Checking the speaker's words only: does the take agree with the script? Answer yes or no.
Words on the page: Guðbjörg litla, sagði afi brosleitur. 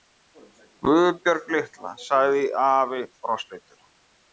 yes